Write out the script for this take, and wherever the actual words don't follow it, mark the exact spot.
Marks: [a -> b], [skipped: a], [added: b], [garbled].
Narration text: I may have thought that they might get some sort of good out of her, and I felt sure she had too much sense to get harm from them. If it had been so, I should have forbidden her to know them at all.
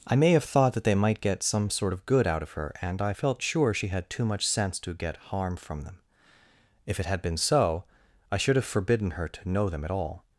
I may have thought that they might get some sort of good out of her, and I felt sure she had too much sense to get harm from them. If it had been so, I should have forbidden her to know them at all.